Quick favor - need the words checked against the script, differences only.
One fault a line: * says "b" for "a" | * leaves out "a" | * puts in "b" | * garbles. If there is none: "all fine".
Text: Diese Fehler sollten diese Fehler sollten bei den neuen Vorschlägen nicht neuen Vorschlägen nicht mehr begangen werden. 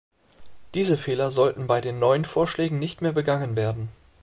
* leaves out "diese Fehler sollten"
* leaves out "neuen Vorschlägen nicht"